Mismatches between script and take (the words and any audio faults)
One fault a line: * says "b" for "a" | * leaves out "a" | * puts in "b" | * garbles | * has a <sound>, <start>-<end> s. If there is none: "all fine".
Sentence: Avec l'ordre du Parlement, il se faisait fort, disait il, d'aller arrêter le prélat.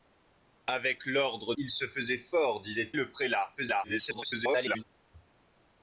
* leaves out "du Parlement"
* leaves out "il d'aller arrêter"
* garbles